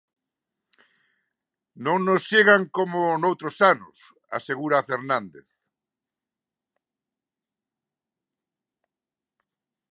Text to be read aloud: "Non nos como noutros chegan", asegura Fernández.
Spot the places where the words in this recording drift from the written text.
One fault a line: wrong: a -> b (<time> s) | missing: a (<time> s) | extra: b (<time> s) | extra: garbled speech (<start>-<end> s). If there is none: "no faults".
extra: chegan (2.3 s)
wrong: chegan -> anos (3.7 s)